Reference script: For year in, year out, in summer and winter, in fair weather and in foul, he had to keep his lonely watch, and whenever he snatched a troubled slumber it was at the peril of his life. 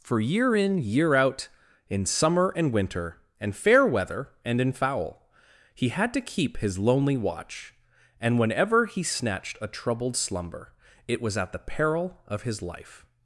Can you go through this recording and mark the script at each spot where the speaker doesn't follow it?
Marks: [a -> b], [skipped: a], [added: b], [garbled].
For year in, year out, in summer and winter, [in -> and] fair weather and in foul, he had to keep his lonely watch, and whenever he snatched a troubled slumber it was at the peril of his life.